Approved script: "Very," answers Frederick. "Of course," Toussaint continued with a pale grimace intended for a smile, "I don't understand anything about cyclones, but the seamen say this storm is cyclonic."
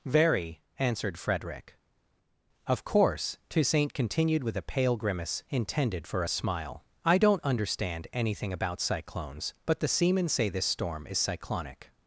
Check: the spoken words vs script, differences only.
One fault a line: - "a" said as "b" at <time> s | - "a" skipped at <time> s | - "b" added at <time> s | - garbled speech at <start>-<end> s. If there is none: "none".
- "answers" said as "answered" at 0.8 s